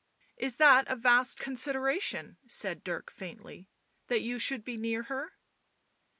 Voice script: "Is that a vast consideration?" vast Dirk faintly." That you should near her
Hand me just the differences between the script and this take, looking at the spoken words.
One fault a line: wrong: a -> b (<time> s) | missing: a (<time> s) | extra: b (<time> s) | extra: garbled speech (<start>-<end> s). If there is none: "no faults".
wrong: vast -> said (2.5 s)
extra: be (4.6 s)